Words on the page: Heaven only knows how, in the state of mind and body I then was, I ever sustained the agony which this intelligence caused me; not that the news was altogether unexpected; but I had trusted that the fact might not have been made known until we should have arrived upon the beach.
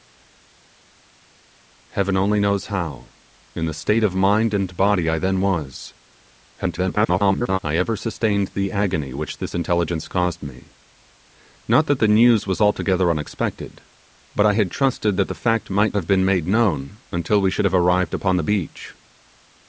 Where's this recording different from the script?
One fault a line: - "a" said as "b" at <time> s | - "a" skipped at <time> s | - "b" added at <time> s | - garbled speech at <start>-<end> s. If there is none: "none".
- garbled speech at 6.6-7.6 s
- "not" skipped at 16.0 s